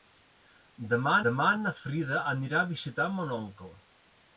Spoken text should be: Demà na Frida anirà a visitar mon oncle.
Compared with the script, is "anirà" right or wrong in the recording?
right